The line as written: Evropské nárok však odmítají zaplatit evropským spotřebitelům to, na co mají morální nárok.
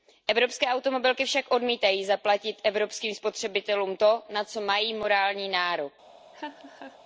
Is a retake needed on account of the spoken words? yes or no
yes